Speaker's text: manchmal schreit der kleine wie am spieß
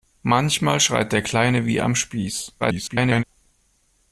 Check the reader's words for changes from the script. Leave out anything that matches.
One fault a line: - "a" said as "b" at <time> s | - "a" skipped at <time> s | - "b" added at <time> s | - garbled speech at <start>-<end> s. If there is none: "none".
- garbled speech at 2.6-3.2 s